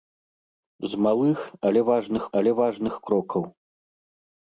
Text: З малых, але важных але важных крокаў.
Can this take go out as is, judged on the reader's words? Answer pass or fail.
pass